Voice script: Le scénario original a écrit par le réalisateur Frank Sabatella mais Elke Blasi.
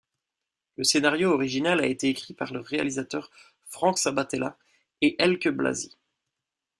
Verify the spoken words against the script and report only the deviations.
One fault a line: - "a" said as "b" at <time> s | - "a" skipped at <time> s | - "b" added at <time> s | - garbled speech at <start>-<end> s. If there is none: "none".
- "été" added at 1.9 s
- "mais" said as "et" at 5.0 s